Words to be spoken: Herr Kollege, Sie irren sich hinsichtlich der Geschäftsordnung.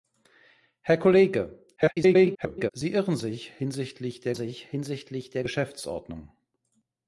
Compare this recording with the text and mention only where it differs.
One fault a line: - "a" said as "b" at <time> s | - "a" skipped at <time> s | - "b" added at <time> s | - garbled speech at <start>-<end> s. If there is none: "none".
- garbled speech at 1.8-2.7 s
- "sich hinsichtlich der" added at 4.3 s